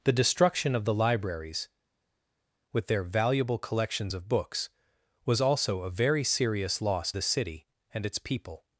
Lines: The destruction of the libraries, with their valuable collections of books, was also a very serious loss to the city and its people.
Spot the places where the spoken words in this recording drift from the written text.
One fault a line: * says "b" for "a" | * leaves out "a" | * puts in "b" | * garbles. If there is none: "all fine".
* leaves out "to"